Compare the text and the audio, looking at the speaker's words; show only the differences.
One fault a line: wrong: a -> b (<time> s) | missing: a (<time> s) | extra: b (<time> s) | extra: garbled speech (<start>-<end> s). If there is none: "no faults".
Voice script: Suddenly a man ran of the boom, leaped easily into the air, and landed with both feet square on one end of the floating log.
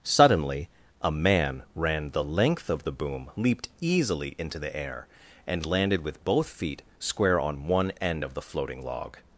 extra: the length (2.1 s)